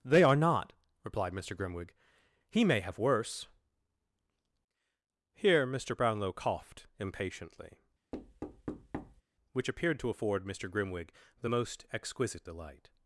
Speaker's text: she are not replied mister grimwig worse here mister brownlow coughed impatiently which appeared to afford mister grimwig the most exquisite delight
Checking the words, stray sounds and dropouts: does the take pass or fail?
fail